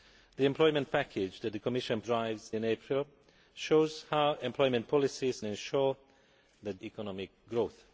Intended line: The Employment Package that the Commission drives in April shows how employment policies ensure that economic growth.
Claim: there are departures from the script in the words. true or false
false